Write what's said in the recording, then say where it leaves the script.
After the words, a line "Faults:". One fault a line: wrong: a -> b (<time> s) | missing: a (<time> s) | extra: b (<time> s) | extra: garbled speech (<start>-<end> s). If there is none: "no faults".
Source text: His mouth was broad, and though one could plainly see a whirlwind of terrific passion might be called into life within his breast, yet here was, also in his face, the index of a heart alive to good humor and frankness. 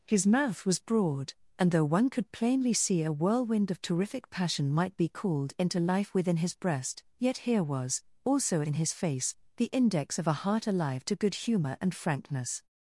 His mouth was broad, and though one could plainly see a whirlwind of terrific passion might be called into life within his breast, yet here was, also in his face, the index of a heart alive to good humor and frankness.
Faults:
no faults